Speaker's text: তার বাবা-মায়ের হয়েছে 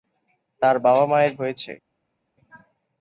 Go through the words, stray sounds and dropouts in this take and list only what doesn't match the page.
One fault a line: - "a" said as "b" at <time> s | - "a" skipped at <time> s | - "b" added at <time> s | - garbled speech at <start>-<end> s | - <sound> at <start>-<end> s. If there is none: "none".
none